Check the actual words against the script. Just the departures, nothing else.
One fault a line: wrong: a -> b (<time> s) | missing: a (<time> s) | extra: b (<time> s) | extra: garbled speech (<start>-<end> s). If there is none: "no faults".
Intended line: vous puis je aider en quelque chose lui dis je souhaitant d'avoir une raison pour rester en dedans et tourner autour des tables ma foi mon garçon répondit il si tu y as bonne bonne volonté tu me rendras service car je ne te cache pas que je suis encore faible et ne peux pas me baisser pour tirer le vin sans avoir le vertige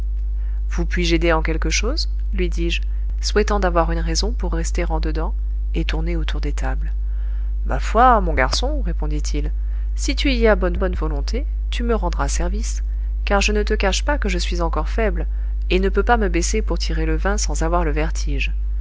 no faults